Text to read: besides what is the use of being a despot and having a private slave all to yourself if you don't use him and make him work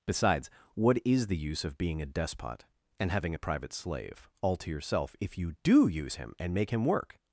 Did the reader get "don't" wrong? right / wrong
wrong